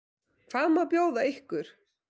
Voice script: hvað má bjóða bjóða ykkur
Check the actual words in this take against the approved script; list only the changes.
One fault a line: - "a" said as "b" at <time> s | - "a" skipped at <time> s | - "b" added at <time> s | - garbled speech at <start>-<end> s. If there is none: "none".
- "bjóða" skipped at 1.3 s